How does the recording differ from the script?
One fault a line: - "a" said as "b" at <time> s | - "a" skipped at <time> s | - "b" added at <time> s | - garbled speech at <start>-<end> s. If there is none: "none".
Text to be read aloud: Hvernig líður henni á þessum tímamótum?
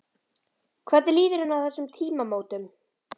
none